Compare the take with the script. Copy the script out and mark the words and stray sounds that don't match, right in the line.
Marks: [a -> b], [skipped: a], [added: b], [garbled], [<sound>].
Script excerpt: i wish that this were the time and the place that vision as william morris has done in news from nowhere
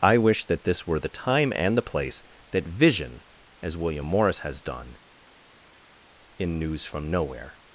i wish that this were the time and the place that vision as william morris has done in news from nowhere